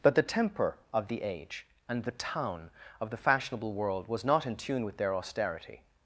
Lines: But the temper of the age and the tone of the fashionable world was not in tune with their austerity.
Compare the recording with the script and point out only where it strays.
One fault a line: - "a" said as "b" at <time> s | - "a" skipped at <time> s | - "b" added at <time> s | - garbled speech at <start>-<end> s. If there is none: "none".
- "tone" said as "town" at 2.1 s